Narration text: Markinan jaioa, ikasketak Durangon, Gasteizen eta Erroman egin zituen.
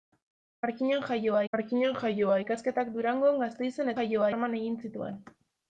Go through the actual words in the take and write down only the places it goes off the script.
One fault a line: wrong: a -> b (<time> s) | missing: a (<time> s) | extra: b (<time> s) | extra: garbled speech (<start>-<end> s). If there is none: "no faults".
extra: markinan jaioa (1.6 s)
wrong: eta -> jaioa (4.0 s)